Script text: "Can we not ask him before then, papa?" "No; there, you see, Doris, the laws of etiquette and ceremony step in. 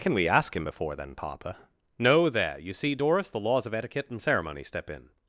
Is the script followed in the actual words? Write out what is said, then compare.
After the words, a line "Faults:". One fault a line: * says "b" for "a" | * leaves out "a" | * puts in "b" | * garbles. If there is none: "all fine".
"Can we ask him before then, papa?" "No; there, you see, Doris, the laws of etiquette and ceremony step in.
Faults:
* leaves out "not"